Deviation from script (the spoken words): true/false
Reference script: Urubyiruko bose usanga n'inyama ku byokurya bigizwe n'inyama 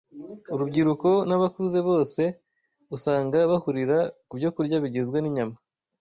true